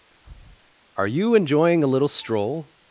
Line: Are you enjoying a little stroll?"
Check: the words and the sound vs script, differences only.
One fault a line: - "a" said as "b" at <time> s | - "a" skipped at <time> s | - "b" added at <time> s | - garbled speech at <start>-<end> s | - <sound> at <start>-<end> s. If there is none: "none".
- breath at 0.1-0.7 s